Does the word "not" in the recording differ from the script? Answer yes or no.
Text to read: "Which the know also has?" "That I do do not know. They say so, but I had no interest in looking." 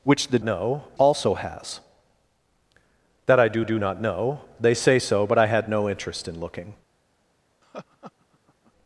no